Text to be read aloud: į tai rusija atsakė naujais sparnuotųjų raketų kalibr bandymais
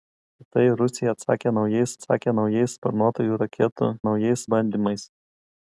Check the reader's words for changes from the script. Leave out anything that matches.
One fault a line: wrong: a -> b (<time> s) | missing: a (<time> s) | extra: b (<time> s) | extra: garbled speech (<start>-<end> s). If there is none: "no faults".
extra: atsakė naujais (2.0 s)
wrong: kalibr -> naujais (4.1 s)